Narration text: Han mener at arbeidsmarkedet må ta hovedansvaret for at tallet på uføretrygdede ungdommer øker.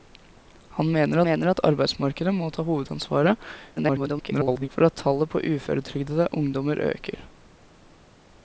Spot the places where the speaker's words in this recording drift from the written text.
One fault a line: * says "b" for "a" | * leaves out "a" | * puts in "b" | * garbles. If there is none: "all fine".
* puts in "mener"
* garbles